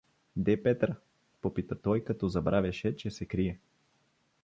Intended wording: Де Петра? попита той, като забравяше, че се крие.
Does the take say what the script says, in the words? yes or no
yes